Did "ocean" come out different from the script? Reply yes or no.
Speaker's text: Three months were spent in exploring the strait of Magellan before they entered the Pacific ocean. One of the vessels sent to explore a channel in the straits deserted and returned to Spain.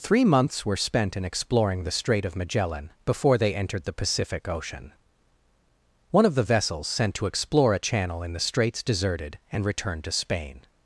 no